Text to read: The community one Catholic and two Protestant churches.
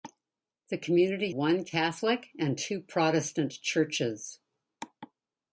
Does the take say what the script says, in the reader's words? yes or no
yes